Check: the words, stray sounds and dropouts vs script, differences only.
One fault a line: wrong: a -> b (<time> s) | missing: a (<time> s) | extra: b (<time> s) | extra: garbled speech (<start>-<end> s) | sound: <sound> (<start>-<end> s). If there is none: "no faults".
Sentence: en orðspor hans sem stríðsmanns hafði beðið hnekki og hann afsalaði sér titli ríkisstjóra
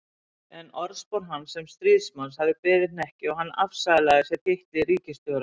no faults